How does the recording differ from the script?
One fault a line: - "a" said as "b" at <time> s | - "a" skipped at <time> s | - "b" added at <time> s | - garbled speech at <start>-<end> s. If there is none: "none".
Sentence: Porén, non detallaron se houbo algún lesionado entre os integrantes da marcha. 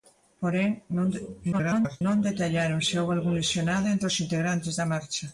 - garbled speech at 1.5-2.0 s